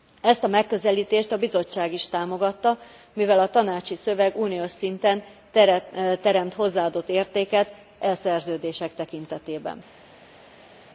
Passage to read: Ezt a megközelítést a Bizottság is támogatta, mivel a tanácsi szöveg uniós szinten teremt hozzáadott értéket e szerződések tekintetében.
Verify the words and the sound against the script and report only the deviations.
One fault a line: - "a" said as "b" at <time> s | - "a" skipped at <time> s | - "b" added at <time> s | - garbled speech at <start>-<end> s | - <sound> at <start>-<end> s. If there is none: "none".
none